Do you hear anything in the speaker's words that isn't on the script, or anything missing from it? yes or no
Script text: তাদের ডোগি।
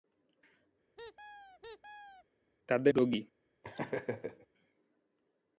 no